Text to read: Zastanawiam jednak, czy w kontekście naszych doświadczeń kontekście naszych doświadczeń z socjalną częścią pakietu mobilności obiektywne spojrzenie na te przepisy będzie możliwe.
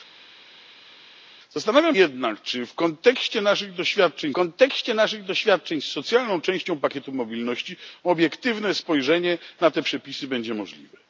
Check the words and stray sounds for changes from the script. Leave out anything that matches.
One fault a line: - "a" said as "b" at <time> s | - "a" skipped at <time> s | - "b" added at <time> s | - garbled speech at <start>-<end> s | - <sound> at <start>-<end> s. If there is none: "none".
none